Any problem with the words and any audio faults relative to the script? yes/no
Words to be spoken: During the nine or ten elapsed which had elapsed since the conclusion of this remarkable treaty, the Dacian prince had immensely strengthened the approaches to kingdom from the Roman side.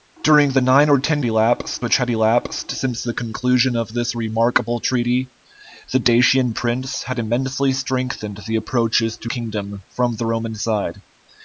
no